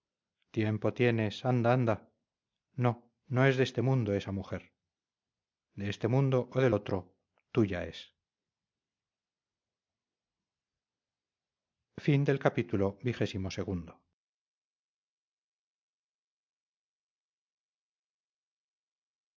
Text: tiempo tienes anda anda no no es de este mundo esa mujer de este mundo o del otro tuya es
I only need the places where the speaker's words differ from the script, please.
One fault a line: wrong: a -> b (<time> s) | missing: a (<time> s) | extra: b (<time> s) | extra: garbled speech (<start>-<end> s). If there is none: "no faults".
no faults